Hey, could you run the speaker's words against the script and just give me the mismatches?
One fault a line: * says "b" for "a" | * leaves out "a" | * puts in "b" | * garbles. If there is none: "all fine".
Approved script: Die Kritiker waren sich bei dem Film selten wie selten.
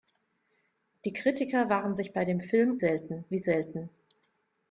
all fine